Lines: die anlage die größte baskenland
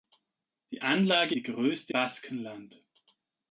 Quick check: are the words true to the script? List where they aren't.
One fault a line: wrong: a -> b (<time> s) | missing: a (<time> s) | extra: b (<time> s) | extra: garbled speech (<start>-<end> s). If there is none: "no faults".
no faults